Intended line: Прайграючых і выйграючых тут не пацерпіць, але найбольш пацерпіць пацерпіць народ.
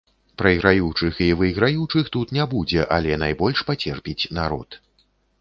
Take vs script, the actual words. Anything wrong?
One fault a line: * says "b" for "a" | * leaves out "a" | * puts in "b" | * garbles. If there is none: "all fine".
* says "будзе" for "пацерпіць"
* leaves out "пацерпіць"